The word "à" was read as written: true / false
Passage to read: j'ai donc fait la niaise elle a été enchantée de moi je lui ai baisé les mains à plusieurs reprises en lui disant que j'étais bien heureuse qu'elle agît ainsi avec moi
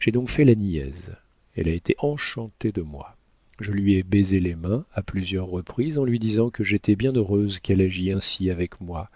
true